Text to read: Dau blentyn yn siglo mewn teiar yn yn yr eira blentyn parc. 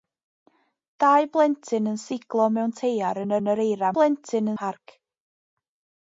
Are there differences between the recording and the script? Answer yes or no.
no